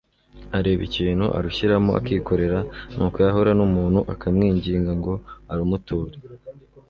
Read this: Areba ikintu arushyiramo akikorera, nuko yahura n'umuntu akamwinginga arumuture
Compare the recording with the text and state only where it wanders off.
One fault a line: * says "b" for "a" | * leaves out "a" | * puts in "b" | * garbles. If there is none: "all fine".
* puts in "ngo"